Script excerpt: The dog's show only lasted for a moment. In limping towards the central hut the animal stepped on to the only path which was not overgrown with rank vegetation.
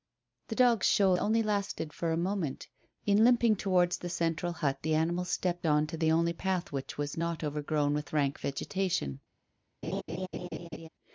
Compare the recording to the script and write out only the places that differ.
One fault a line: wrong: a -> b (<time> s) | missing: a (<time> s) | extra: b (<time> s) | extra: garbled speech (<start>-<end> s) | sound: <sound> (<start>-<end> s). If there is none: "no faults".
sound: laugh (9.8-10.9 s)